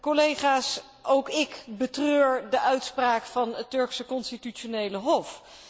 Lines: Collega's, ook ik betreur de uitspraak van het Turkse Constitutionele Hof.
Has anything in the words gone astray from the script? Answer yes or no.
no